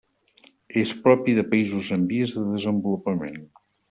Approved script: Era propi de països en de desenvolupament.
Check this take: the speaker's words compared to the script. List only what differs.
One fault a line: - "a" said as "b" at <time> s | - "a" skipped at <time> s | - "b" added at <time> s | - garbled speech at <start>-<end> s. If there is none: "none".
- "Era" said as "És" at 0.8 s
- "vies" added at 2.1 s